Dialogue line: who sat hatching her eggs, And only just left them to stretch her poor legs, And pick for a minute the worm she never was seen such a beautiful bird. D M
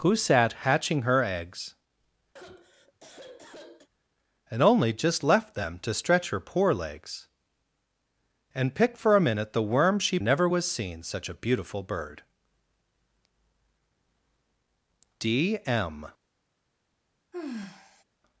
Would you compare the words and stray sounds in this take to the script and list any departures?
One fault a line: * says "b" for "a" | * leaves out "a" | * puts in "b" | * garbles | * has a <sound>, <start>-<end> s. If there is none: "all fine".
* has a sigh, 2.4-3.9 s
* has a sigh, 17.3-18.0 s